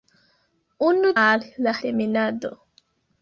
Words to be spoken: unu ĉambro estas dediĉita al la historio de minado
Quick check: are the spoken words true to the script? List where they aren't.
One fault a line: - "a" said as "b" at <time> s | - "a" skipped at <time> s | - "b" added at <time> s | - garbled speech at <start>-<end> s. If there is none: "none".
- "ĉambro estas dediĉita" skipped at 1.1 s
- "historio" skipped at 1.7 s